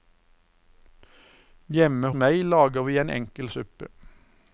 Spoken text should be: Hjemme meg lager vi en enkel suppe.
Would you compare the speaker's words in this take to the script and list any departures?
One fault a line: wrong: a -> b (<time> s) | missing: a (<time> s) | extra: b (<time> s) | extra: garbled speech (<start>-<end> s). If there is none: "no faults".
no faults